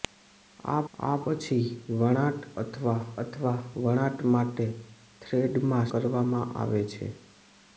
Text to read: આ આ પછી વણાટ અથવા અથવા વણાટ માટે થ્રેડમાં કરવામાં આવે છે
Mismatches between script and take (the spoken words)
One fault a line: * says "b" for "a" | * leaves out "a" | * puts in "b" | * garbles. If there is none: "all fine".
all fine